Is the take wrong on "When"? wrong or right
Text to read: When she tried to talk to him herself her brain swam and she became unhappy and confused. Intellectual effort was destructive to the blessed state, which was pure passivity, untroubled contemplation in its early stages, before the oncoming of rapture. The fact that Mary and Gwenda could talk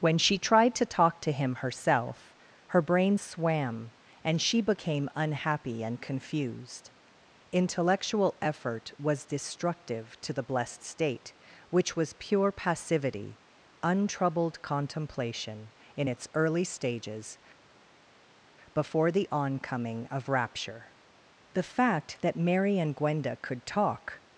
right